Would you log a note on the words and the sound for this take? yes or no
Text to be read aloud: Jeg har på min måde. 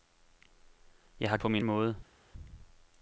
no